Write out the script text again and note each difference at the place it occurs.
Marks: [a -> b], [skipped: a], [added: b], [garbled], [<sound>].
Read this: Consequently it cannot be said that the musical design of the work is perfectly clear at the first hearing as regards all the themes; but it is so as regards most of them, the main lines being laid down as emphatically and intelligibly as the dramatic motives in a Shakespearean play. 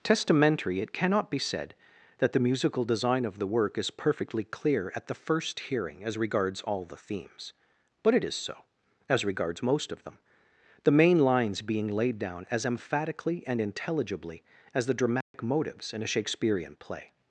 [Consequently -> Testamentary] it cannot be said that the musical design of the work is perfectly clear at the first hearing as regards all the themes; but it is so as regards most of them, the main lines being laid down as emphatically and intelligibly as the dramatic [dropout] motives in a Shakespearean play.